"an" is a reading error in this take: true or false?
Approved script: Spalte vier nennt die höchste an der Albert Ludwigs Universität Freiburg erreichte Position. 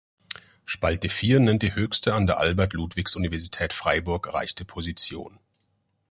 false